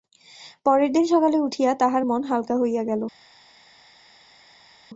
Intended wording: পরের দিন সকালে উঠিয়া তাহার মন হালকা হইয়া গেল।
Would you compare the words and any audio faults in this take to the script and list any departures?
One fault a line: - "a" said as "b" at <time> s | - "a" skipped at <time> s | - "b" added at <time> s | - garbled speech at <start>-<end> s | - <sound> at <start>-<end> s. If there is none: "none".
none